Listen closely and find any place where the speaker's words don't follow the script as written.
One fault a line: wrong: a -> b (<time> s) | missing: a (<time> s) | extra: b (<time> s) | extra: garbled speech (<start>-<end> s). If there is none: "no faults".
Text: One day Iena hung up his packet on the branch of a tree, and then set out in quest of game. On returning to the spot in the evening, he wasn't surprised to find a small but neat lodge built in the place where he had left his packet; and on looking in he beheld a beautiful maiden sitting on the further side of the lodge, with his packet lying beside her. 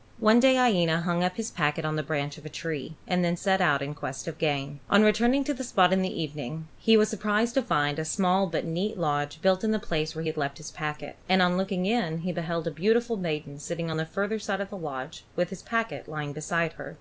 wrong: wasn't -> was (7.0 s)